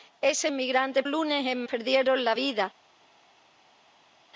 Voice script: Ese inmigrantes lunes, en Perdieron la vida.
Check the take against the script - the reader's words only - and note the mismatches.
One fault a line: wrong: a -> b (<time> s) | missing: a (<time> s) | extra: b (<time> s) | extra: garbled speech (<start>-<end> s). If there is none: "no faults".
no faults